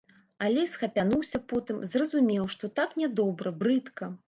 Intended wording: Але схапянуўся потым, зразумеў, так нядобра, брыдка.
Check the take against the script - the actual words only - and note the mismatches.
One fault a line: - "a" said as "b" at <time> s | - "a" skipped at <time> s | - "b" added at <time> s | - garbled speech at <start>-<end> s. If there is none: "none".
- "што" added at 2.5 s